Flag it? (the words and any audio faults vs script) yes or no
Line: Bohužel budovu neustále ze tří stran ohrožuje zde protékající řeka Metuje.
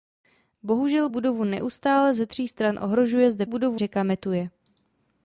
yes